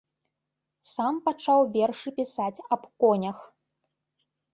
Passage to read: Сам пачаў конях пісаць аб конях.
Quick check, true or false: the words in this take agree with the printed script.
false